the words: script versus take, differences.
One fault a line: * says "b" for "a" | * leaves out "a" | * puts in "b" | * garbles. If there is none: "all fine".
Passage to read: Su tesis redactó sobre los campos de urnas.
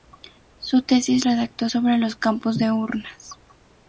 all fine